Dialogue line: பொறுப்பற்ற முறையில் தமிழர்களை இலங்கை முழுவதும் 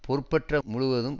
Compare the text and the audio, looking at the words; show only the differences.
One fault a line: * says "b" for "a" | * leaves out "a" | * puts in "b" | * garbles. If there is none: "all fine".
* leaves out "முறையில் தமிழர்களை இலங்கை"